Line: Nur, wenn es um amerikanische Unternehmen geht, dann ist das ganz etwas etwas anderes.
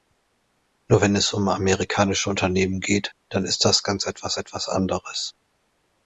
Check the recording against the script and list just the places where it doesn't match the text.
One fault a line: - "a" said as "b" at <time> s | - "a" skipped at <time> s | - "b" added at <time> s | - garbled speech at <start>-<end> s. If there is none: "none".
none